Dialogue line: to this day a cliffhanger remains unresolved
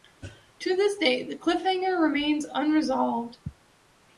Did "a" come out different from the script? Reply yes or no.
yes